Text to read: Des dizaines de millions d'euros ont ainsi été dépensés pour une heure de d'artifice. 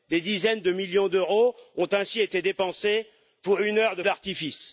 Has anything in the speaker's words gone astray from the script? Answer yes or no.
no